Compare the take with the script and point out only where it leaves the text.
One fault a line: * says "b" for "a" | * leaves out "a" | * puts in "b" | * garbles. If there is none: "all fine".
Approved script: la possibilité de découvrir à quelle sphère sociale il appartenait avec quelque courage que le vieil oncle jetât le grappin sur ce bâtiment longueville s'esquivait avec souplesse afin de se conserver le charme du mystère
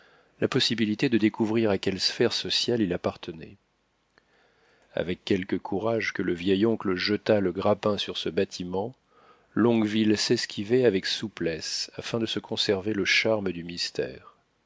all fine